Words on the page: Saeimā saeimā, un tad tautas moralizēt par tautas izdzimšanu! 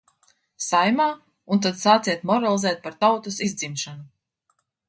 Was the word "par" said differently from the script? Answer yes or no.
no